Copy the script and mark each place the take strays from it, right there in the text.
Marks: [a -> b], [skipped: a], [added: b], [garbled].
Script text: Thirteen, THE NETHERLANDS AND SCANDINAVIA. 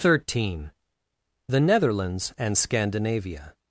Thirteen, THE NETHERLANDS AND SCANDINAVIA.